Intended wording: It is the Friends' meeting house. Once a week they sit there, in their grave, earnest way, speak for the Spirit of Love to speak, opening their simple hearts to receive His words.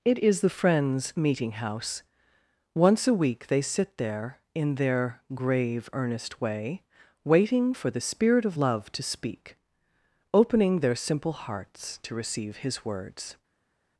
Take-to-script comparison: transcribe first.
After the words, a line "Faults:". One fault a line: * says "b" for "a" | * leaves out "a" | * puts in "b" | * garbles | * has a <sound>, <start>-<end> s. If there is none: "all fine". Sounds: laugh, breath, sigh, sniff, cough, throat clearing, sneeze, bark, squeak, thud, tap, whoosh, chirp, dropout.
It is the Friends' meeting house. Once a week they sit there, in their grave, earnest way, waiting for the Spirit of Love to speak, opening their simple hearts to receive His words.
Faults:
* says "waiting" for "speak"